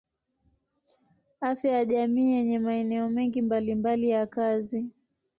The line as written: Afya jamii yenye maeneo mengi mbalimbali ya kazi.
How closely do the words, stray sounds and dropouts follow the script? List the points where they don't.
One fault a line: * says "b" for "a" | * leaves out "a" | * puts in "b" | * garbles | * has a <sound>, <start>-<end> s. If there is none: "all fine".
* puts in "ya"